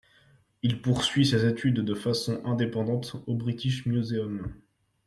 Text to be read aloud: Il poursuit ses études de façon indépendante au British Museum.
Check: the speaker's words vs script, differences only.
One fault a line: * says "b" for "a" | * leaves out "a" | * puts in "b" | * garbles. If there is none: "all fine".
all fine